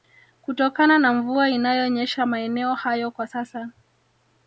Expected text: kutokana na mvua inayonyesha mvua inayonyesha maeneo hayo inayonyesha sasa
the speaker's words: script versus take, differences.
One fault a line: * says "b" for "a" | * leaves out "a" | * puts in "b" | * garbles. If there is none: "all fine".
* leaves out "mvua inayonyesha"
* says "kwa" for "inayonyesha"